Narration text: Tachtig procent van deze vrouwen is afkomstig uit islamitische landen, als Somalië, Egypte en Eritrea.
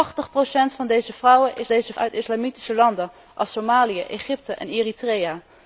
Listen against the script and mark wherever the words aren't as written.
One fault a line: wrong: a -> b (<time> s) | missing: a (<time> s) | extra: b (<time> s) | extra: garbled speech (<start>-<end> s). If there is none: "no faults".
wrong: afkomstig -> deze (1.7 s)